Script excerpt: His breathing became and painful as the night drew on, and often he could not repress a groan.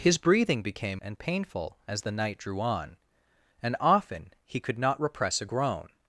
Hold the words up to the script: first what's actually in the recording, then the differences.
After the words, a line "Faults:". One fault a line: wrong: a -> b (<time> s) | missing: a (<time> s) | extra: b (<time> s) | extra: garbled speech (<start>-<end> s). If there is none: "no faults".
His breathing became and painful as the night drew on, and often he could not repress a groan.
Faults:
no faults